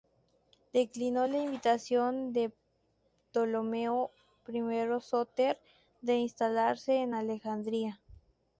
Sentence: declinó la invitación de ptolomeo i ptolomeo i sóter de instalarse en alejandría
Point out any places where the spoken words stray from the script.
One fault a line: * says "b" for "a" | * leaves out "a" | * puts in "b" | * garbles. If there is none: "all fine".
* leaves out "ptolomeo i"